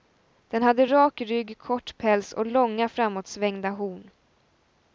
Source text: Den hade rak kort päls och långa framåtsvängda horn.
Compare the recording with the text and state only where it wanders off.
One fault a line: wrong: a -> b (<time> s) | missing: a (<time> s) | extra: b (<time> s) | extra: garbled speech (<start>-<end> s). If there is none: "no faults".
extra: rygg (1.2 s)